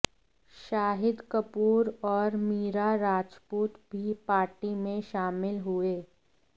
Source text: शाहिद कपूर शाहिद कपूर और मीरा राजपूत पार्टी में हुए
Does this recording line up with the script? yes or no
no